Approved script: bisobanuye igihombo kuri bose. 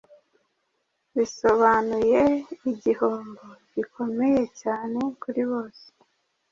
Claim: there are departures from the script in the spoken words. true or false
true